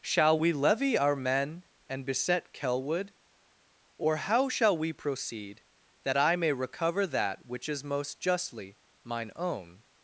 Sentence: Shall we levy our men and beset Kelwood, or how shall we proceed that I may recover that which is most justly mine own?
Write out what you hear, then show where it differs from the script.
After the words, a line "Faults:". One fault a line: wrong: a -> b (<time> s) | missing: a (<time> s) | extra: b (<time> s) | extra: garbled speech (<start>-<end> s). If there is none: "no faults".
Shall we levy our men and beset Kelwood, or how shall we proceed that I may recover that which is most justly mine own?
Faults:
no faults